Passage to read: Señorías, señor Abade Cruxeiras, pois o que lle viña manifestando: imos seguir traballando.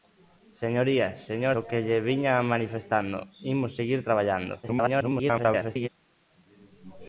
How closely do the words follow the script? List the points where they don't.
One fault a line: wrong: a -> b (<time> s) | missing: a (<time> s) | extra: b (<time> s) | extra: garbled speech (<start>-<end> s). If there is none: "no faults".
missing: Abade Cruxeiras pois (1.6 s)
extra: garbled speech (4.6-5.9 s)